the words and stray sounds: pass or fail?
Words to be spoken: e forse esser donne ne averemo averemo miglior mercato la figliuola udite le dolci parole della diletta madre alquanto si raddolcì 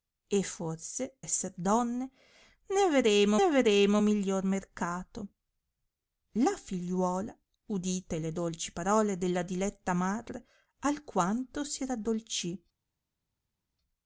pass